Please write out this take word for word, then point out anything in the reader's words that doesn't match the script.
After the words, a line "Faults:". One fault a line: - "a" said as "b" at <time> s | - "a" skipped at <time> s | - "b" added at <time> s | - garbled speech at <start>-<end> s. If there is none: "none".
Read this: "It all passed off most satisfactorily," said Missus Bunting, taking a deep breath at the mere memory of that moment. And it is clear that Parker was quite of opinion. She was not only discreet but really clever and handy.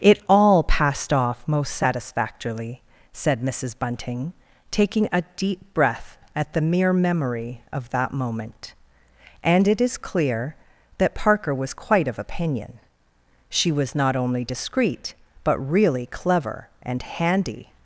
"It all passed off most satisfactorily," said Missus Bunting, taking a deep breath at the mere memory of that moment. And it is clear that Parker was quite of opinion. She was not only discreet but really clever and handy.
Faults:
none